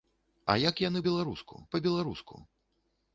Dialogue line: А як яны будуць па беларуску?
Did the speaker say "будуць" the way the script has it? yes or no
no